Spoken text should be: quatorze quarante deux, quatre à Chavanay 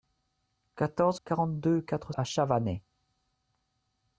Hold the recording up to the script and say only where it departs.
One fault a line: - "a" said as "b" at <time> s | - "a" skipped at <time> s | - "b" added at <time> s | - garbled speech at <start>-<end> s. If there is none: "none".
none